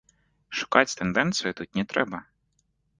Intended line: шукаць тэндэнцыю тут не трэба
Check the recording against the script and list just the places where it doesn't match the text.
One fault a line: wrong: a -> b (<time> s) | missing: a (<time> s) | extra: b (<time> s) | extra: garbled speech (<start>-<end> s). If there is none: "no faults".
no faults